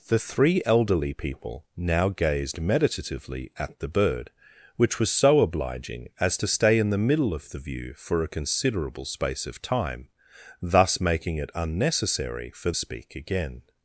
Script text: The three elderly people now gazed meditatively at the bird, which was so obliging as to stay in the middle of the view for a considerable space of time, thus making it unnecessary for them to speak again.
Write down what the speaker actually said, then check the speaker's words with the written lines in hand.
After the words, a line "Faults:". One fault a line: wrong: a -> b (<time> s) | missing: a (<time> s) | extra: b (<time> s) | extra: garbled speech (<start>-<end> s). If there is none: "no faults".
The three elderly people now gazed meditatively at the bird, which was so obliging as to stay in the middle of the view for a considerable space of time, thus making it unnecessary for speak again.
Faults:
missing: them to (12.7 s)